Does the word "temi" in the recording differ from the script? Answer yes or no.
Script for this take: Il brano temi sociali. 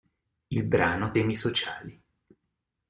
no